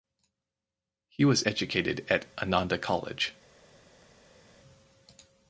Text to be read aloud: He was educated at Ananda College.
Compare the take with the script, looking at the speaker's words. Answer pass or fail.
pass